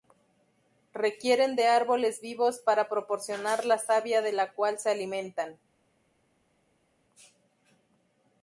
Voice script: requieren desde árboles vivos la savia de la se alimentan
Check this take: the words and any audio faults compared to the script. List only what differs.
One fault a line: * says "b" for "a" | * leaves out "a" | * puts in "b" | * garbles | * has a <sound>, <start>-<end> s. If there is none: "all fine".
* says "de" for "desde"
* puts in "para proporcionar"
* puts in "cual"